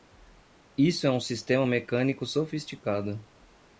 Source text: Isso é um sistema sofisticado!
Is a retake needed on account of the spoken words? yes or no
yes